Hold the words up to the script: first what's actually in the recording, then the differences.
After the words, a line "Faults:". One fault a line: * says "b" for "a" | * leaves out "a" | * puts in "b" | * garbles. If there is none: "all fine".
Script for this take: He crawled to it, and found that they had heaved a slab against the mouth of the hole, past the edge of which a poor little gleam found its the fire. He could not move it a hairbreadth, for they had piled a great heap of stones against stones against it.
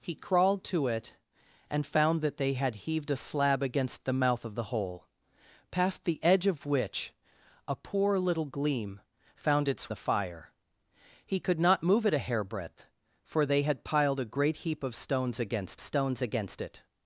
He crawled to it, and found that they had heaved a slab against the mouth of the hole, past the edge of which a poor little gleam found its the fire. He could not move it a hairbreadth, for they had piled a great heap of stones against stones against it.
Faults:
all fine